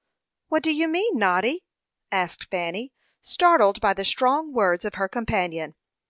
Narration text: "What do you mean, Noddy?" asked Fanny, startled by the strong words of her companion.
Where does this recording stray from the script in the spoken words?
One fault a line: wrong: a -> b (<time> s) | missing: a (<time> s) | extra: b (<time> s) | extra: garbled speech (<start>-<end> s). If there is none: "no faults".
no faults